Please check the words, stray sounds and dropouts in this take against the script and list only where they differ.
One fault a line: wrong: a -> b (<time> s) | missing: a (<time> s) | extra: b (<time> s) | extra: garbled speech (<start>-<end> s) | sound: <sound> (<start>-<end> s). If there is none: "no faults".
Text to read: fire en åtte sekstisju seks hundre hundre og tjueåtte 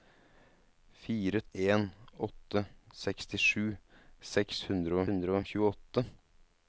no faults